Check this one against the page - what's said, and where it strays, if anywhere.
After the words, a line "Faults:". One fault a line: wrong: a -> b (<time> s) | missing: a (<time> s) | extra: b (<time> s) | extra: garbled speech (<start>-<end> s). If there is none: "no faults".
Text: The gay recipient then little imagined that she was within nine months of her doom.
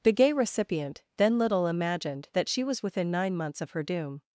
The gay recipient then little imagined that she was within nine months of her doom.
Faults:
no faults